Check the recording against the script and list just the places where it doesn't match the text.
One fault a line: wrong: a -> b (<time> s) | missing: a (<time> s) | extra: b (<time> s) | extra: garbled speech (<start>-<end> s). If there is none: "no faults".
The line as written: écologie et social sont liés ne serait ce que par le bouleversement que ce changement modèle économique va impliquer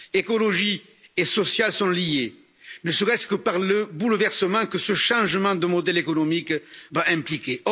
extra: de (5.5 s)